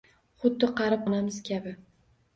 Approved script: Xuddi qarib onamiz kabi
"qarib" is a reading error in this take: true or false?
false